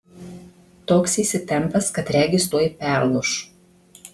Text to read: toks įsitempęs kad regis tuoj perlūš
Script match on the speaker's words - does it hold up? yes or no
yes